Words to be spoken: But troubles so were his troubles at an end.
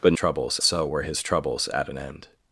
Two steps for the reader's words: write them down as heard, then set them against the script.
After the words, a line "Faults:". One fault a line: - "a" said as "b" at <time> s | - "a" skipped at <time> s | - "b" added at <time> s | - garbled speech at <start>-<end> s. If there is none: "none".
But troubles so were his troubles at an end.
Faults:
none